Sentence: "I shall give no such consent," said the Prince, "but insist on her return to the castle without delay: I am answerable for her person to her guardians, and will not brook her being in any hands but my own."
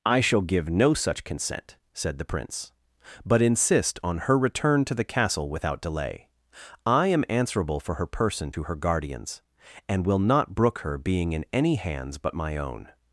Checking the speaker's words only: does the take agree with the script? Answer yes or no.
yes